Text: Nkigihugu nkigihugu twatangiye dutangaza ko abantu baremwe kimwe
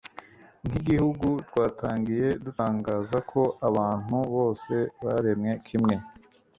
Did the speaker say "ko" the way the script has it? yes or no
yes